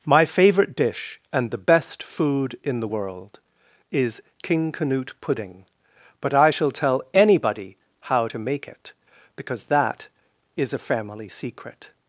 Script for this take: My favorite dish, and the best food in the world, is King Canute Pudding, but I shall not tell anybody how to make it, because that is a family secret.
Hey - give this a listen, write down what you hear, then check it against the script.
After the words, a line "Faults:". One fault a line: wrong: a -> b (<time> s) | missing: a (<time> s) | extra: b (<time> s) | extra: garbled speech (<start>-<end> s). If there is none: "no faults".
My favorite dish, and the best food in the world, is King Canute Pudding, but I shall tell anybody how to make it, because that is a family secret.
Faults:
missing: not (6.7 s)